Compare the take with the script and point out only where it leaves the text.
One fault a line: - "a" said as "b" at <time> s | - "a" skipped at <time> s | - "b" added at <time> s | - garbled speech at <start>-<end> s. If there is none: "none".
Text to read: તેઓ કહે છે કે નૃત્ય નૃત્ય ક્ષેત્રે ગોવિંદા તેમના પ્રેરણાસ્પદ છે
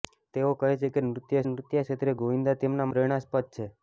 none